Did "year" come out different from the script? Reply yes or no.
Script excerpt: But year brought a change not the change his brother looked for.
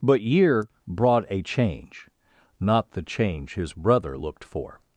no